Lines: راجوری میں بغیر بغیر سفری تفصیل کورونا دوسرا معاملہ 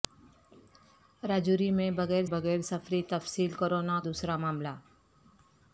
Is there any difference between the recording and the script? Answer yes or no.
no